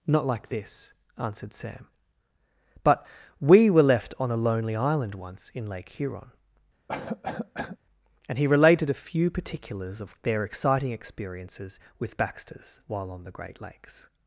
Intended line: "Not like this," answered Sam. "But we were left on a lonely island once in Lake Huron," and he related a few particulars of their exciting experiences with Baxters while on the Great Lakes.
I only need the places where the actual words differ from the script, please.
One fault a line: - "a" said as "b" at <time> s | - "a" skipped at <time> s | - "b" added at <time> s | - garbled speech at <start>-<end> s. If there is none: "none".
none